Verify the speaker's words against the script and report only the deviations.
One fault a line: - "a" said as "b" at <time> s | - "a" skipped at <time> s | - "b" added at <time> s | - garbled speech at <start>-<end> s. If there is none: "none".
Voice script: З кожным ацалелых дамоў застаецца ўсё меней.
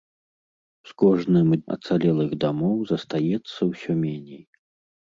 none